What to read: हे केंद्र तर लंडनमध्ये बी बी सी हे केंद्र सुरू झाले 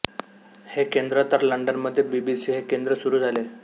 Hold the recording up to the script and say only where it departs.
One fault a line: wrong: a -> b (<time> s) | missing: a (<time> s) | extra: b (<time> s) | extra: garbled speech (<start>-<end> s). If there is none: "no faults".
no faults